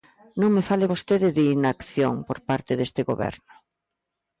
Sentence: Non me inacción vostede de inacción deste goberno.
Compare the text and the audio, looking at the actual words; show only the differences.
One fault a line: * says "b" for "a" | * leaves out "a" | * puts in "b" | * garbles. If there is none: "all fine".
* says "fale" for "inacción"
* puts in "por parte"